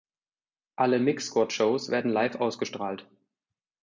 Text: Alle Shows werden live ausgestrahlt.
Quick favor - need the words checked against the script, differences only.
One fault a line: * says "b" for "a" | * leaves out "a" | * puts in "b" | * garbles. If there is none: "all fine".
* puts in "Mix Squad"